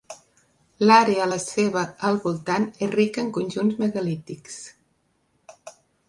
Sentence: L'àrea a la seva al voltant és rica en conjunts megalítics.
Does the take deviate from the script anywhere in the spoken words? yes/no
no